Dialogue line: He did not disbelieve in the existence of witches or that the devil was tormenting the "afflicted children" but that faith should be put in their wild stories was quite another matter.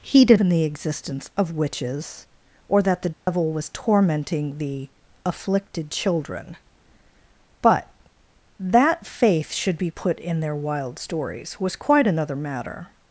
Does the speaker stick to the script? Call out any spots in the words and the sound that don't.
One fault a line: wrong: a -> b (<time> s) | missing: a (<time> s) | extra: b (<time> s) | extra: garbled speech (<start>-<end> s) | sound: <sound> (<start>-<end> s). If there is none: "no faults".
missing: not disbelieve (0.4 s)
sound: dropout (3.1-3.3 s)